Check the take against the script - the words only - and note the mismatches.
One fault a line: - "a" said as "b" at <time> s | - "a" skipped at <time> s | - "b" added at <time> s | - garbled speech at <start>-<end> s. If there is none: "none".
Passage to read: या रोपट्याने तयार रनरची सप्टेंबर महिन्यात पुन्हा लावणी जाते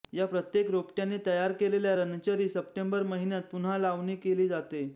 - "प्रत्येक" added at 0.3 s
- "केलेल्या" added at 1.5 s
- "केली" added at 4.2 s